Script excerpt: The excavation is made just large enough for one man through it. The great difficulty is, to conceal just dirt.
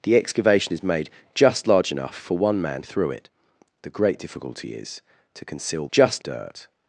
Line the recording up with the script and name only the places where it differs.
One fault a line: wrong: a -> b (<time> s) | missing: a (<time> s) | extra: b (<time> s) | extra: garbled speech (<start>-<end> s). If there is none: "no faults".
no faults